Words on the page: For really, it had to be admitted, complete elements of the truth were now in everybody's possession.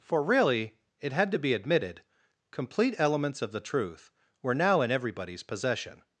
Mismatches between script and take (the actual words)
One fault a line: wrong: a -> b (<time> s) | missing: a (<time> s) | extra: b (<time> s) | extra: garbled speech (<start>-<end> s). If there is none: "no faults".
no faults